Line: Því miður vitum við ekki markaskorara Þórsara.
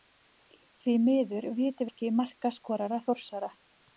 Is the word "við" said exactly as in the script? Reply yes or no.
no